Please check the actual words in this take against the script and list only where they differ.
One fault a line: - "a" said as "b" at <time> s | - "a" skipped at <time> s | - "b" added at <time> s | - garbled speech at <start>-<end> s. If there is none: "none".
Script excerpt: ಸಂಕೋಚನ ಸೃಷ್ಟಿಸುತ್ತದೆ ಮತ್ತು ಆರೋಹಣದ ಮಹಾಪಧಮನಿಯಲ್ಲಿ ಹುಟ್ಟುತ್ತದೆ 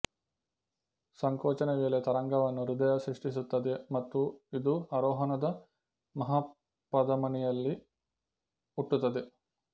- "ವೇಳೆ ತರಂಗವನ್ನು ಹೃದಯ" added at 1.7 s
- "ಇದು" added at 4.5 s